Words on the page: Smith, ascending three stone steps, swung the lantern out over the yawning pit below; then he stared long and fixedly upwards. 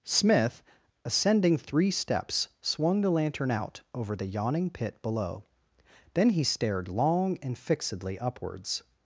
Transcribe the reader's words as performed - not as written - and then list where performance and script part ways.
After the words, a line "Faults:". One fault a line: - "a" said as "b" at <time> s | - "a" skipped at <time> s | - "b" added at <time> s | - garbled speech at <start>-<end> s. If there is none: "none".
Smith, ascending three steps, swung the lantern out over the yawning pit below; then he stared long and fixedly upwards.
Faults:
- "stone" skipped at 1.9 s